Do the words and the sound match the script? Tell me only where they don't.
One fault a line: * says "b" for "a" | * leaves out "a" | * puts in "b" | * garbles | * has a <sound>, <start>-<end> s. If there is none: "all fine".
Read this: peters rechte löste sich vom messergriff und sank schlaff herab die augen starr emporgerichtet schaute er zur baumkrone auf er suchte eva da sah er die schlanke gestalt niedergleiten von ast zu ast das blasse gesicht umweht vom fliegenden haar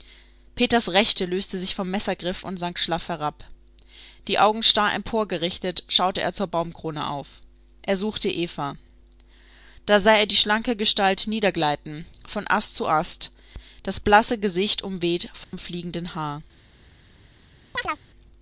* has a dropout, 15.4-15.5 s
* has a chirp, 17.7-18.0 s